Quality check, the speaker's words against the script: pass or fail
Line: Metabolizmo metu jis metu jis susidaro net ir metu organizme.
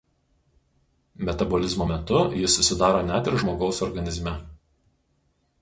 fail